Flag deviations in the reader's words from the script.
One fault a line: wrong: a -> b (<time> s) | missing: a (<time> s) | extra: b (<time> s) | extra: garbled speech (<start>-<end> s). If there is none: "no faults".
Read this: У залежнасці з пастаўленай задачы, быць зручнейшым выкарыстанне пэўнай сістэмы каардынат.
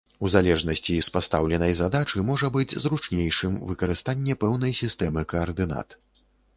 extra: можа (2.3 s)